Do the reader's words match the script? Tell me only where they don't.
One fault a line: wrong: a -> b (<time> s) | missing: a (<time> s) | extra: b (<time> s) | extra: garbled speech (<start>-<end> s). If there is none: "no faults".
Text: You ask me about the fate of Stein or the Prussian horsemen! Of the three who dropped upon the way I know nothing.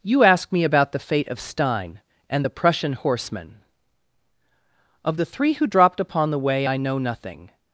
wrong: or -> and (2.3 s)